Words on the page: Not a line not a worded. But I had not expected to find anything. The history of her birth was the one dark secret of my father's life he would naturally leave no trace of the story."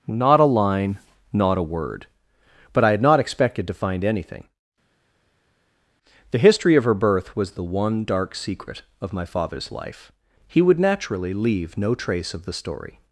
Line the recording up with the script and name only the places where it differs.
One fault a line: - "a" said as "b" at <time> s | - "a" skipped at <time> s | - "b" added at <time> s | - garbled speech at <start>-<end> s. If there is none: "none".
- "worded" said as "word" at 1.6 s